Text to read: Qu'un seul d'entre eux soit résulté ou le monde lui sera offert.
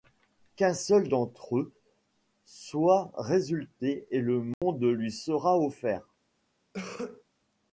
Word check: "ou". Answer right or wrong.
wrong